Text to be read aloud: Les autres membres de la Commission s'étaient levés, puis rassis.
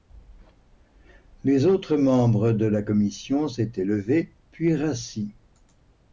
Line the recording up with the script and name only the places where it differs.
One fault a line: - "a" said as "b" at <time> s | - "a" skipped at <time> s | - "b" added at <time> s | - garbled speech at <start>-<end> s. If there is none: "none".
none